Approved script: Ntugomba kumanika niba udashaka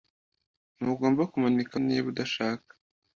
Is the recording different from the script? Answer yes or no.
no